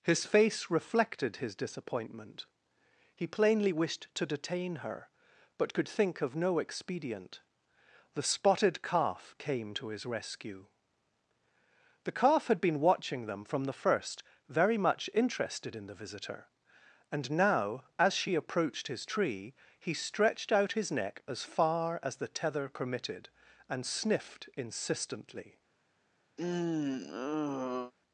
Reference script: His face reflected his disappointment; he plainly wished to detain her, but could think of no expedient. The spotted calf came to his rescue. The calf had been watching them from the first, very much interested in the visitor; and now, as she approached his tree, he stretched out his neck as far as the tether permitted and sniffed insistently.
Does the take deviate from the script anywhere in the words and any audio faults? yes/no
yes